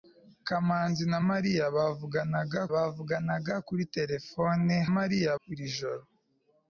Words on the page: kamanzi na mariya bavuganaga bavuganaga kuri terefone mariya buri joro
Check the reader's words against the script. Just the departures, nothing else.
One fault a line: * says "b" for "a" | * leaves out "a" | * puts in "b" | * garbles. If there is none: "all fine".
all fine